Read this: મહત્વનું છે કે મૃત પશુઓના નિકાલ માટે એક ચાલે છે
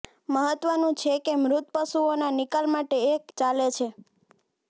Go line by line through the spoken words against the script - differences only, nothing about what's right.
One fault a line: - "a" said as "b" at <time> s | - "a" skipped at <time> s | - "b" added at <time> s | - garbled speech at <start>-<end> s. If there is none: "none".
none